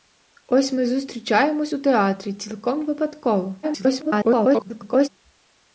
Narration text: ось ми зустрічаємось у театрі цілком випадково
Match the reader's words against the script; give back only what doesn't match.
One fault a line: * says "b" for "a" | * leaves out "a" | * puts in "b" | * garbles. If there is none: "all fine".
* garbles